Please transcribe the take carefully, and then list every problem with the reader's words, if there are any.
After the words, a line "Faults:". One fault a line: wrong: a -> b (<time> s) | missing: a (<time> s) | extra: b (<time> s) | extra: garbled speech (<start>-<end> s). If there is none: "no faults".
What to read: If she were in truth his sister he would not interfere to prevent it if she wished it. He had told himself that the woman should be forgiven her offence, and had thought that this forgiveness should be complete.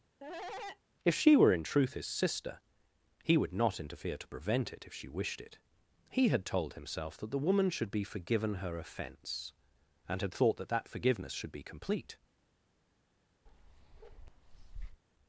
If she were in truth his sister he would not interfere to prevent it if she wished it. He had told himself that the woman should be forgiven her offence, and had thought that that forgiveness should be complete.
Faults:
wrong: this -> that (10.7 s)